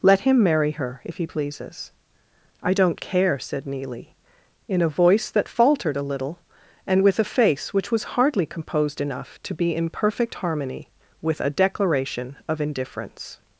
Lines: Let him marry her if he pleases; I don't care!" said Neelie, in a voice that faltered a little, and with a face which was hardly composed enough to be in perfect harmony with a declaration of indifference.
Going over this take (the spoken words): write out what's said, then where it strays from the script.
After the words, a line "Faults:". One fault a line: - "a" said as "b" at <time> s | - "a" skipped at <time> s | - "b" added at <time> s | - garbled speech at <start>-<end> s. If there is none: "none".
Let him marry her if he pleases; I don't care!" said Neelie, in a voice that faltered a little, and with a face which was hardly composed enough to be in perfect harmony with a declaration of indifference.
Faults:
none